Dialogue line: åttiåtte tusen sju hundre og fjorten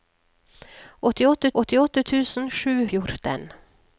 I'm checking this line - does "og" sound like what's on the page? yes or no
no